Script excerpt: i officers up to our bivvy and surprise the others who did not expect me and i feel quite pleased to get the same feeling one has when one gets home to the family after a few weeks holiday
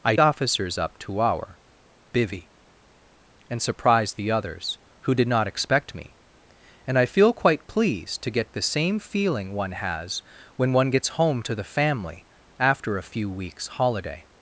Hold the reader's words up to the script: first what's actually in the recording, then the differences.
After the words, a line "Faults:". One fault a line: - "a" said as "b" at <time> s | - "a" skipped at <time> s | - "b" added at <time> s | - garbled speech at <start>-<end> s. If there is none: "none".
i officers up to our bivvy and surprise the others who did not expect me and i feel quite pleased to get the same feeling one has when one gets home to the family after a few weeks holiday
Faults:
none